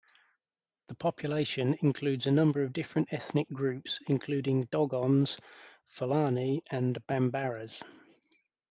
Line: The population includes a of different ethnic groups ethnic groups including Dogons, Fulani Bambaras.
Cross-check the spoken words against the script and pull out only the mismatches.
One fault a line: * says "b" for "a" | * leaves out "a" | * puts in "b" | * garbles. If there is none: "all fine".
* puts in "number"
* leaves out "ethnic groups"
* puts in "and"